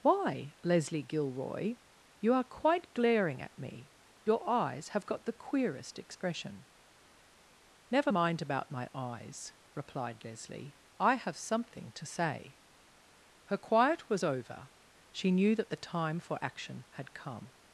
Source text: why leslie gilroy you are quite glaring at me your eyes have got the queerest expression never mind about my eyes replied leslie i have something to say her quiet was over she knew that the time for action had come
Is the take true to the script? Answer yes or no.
yes